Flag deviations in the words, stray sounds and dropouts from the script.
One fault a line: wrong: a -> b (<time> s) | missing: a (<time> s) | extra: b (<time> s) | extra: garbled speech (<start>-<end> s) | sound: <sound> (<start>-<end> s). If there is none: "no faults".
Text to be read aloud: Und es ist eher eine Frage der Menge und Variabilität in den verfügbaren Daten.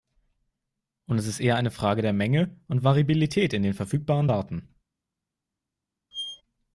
sound: squeak (6.1-6.4 s)